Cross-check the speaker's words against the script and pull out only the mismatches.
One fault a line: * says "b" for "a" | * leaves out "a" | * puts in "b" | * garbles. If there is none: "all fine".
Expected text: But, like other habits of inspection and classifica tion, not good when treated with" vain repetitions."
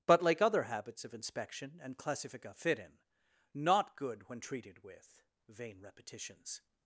* says "fit in" for "tion"